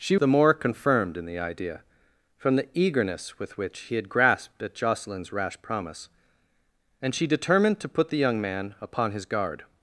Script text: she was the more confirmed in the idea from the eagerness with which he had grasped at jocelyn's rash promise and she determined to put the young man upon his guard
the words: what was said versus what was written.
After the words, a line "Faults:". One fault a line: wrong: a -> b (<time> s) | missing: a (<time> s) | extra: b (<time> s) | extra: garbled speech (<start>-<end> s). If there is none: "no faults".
she the more confirmed in the idea from the eagerness with which he had grasped at jocelyn's rash promise and she determined to put the young man upon his guard
Faults:
missing: was (0.2 s)